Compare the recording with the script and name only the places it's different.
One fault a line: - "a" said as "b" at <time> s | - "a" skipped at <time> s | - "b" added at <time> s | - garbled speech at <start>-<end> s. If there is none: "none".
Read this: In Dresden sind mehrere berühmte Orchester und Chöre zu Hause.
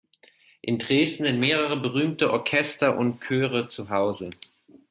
none